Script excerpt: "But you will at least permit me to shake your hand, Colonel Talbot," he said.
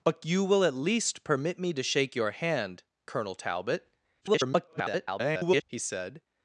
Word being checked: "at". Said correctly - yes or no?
yes